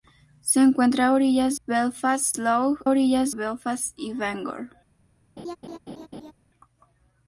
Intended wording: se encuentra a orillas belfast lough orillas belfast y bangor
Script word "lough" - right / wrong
right